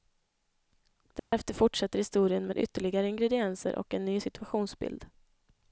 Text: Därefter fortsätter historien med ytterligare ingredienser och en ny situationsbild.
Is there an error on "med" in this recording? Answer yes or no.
no